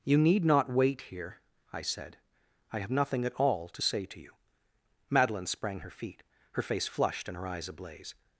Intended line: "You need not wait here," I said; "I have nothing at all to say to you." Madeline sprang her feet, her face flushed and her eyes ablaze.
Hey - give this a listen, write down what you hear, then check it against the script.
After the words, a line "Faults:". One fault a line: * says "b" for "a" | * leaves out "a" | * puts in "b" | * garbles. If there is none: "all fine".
"You need not wait here," I said; "I have nothing at all to say to you." Madeline sprang her feet, her face flushed and her eyes ablaze.
Faults:
all fine